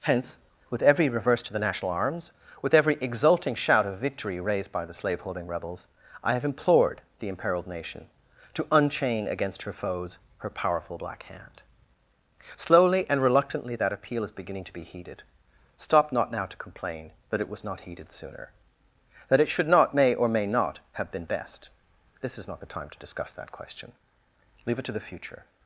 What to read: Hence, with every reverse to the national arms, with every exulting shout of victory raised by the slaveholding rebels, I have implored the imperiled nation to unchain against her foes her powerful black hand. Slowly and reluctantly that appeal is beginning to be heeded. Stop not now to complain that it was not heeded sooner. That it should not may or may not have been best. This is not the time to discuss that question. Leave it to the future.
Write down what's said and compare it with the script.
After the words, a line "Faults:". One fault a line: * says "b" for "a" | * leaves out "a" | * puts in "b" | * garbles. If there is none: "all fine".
Hence, with every reverse to the national arms, with every exulting shout of victory raised by the slaveholding rebels, I have implored the imperiled nation to unchain against her foes her powerful black hand. Slowly and reluctantly that appeal is beginning to be heeded. Stop not now to complain that it was not heeded sooner. That it should not may or may not have been best. This is not the time to discuss that question. Leave it to the future.
Faults:
all fine